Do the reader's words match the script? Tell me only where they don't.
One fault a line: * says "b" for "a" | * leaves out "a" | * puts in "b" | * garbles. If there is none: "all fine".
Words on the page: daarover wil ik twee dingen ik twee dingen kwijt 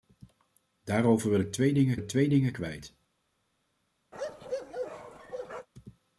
all fine